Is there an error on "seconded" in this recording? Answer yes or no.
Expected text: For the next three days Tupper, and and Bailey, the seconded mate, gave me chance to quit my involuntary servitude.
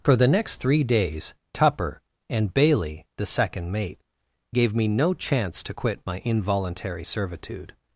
yes